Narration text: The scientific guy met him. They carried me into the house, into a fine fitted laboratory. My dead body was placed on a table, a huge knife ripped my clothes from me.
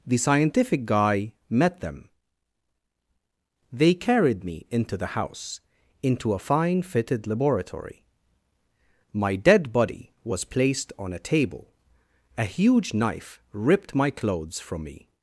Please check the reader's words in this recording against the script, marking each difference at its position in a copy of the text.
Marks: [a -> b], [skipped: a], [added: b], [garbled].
The scientific guy met [him. -> them] They carried me into the house, into a fine fitted laboratory. My dead body was placed on a table, a huge knife ripped my clothes from me.